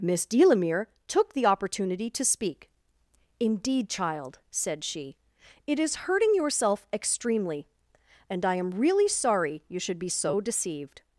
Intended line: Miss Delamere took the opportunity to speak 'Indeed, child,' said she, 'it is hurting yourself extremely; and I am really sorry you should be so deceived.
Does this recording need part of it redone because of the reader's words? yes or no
no